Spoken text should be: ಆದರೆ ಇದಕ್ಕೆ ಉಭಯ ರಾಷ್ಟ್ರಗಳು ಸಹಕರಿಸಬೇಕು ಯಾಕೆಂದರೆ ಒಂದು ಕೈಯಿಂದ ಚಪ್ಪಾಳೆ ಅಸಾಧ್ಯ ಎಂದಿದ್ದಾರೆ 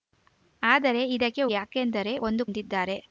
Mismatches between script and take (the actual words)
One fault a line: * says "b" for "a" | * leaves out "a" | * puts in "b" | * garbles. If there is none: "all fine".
* leaves out "ಉಭಯ ರಾಷ್ಟ್ರಗಳು ಸಹಕರಿಸಬೇಕು"
* leaves out "ಕೈಯಿಂದ ಚಪ್ಪಾಳೆ ಅಸಾಧ್ಯ"